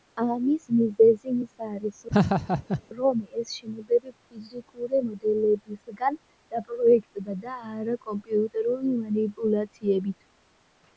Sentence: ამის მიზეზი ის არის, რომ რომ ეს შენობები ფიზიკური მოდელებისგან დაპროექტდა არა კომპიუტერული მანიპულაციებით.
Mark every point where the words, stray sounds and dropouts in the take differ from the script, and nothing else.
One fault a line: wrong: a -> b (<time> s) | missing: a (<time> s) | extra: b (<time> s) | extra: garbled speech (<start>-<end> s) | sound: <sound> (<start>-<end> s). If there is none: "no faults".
sound: laugh (2.1-2.8 s)
missing: რომ (3.2 s)
extra: და (7.4 s)